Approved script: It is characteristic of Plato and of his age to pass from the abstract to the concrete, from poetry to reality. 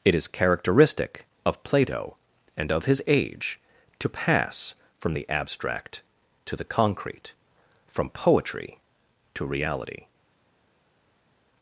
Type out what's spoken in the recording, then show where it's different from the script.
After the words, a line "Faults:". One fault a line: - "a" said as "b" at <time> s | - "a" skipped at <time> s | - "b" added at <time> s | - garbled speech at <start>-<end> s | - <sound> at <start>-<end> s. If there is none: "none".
It is characteristic of Plato and of his age to pass from the abstract to the concrete, from poetry to reality.
Faults:
none